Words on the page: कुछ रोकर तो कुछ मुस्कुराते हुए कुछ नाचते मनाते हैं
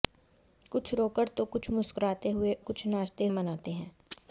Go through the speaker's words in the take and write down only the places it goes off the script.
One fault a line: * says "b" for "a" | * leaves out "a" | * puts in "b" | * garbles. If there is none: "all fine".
all fine